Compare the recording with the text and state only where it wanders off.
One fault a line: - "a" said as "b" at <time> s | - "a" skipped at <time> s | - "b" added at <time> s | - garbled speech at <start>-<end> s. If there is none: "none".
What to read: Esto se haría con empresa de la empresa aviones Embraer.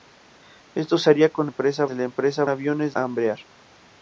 none